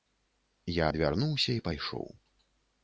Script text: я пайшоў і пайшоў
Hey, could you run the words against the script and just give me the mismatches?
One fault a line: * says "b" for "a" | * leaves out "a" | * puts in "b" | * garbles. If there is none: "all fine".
* says "адвярнуўся" for "пайшоў"